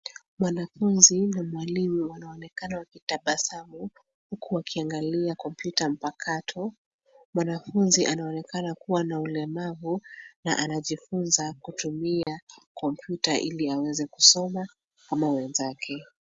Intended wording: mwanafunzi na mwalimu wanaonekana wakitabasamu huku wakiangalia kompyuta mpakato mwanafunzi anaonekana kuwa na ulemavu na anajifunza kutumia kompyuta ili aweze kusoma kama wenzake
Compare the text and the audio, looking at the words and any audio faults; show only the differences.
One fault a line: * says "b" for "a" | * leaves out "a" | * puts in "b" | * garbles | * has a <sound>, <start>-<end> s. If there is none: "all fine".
* has a dropout, 12.2-12.3 s